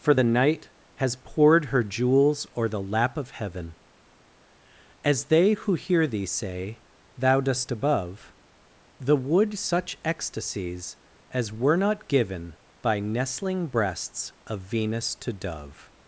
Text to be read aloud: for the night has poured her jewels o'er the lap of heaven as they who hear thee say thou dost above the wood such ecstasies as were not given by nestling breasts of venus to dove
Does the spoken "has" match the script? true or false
true